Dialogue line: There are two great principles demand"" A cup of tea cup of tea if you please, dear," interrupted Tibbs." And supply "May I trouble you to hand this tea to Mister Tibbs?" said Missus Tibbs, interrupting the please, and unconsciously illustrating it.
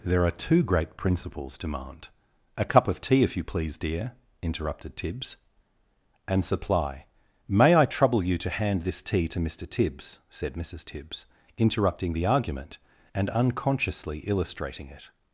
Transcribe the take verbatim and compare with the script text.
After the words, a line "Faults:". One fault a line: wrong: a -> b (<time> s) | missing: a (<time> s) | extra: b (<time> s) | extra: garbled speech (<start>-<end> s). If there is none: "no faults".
There are two great principles demand"" A cup of tea if you please, dear," interrupted Tibbs." And supply "May I trouble you to hand this tea to Mister Tibbs?" said Missus Tibbs, interrupting the argument, and unconsciously illustrating it.
Faults:
missing: cup of tea (3.2 s)
wrong: please -> argument (12.2 s)